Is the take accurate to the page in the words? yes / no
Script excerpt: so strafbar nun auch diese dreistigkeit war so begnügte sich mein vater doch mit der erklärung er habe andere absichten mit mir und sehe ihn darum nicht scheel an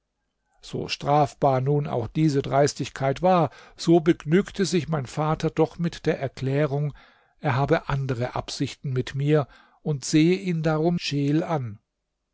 no